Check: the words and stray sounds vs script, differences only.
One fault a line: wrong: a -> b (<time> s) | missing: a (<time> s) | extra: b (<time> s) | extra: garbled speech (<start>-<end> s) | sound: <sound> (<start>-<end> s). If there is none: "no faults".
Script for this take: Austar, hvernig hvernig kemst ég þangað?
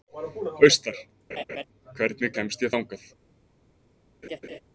sound: laugh (1.3-1.6 s)
missing: hvernig (2.3 s)
sound: laugh (4.2-4.6 s)